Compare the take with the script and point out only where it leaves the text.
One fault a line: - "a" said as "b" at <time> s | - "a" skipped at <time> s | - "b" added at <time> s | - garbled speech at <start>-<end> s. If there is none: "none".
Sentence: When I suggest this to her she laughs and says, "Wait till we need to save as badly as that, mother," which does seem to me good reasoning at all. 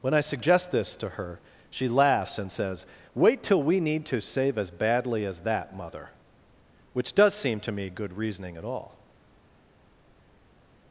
none